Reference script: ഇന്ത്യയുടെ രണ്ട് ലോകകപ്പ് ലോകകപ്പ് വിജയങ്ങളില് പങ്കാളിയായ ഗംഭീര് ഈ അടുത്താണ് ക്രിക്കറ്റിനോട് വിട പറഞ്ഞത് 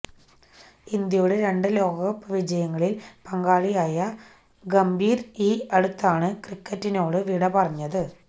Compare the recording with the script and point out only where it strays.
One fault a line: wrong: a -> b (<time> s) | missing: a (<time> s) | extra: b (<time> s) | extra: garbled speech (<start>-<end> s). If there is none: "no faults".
missing: ലോകകപ്പ് (2.3 s)